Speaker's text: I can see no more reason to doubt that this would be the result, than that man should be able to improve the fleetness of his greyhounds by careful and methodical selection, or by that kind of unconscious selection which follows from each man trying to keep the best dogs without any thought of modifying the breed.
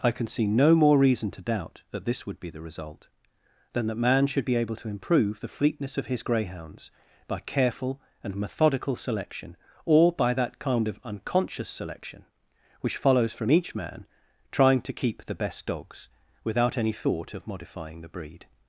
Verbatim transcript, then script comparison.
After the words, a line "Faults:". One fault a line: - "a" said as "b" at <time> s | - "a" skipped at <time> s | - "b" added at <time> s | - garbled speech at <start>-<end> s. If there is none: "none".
I can see no more reason to doubt that this would be the result, than that man should be able to improve the fleetness of his greyhounds by careful and methodical selection, or by that kind of unconscious selection which follows from each man trying to keep the best dogs without any thought of modifying the breed.
Faults:
none